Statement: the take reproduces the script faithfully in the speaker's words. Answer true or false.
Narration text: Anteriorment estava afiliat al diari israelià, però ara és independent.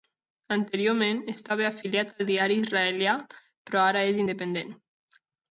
true